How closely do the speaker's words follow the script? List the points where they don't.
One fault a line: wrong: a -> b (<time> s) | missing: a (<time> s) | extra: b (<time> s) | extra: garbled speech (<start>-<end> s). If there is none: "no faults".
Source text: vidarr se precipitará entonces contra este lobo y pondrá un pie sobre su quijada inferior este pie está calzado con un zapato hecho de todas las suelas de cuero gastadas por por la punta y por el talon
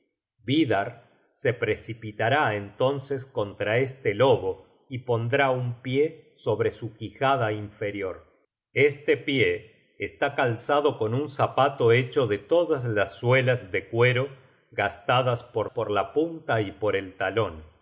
no faults